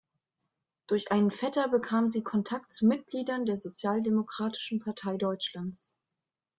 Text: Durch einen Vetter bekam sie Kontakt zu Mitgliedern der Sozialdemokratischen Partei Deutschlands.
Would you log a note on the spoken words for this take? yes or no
no